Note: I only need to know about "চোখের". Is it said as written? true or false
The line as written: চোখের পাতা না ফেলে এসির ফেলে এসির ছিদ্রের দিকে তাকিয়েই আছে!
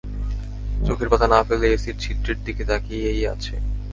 true